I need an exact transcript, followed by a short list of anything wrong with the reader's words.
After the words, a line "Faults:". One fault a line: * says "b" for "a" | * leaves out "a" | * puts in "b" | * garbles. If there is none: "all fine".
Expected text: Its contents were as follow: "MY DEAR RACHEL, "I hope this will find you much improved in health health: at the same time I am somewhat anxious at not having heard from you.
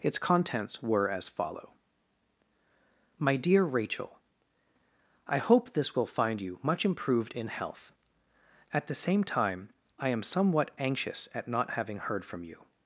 Its contents were as follow: "MY DEAR RACHEL, "I hope this will find you much improved in health: at the same time I am somewhat anxious at not having heard from you.
Faults:
* leaves out "health"